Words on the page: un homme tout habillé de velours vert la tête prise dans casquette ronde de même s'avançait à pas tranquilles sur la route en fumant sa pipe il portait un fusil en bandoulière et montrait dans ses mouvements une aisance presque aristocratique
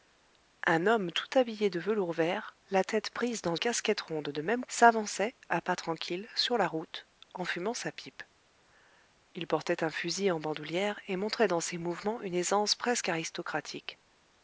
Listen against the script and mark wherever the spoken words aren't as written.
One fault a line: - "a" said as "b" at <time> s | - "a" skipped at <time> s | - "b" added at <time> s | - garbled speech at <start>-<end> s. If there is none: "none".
none